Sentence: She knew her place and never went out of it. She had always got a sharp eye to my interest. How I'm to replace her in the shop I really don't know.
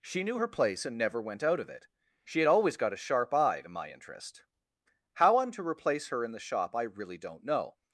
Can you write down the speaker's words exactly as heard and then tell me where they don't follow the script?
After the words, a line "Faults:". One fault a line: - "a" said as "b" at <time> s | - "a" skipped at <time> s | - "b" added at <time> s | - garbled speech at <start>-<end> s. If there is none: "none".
She knew her place and never went out of it. She had always got a sharp eye to my interest. How I'm to replace her in the shop I really don't know.
Faults:
none